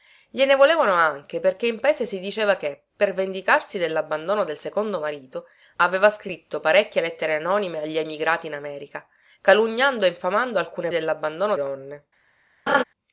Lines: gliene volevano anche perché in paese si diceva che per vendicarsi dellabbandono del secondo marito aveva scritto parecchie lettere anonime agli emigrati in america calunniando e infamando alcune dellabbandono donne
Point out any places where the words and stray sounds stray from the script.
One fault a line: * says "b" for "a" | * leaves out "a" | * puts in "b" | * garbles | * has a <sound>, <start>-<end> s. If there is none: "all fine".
* has a laugh, 12.7-12.8 s